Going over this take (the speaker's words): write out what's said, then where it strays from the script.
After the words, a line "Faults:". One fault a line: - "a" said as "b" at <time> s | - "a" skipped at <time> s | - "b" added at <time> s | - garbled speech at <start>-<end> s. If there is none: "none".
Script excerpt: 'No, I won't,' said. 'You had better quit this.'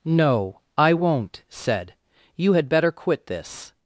'No, I won't,' said. 'You had better quit this.'
Faults:
none